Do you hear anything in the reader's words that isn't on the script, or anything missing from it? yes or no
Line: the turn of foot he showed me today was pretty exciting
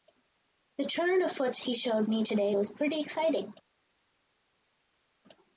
no